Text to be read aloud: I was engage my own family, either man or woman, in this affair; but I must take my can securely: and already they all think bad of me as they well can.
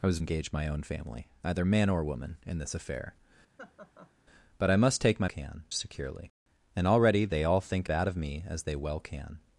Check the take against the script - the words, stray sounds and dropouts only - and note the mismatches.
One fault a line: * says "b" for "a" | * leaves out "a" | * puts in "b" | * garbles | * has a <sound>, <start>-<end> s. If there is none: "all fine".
* has a laugh, 3.6-4.1 s